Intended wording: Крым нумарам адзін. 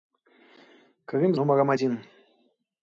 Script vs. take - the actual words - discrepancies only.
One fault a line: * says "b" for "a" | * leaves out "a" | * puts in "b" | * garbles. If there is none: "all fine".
all fine